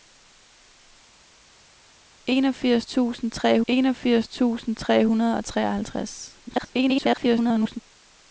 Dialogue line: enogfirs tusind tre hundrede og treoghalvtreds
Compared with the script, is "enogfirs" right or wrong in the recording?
right